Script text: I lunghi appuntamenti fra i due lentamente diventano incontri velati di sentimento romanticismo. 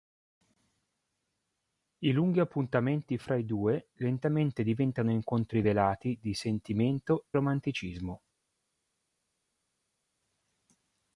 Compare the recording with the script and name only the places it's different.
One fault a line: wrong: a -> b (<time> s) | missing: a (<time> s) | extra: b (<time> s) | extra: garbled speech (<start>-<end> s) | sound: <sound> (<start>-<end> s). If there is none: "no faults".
no faults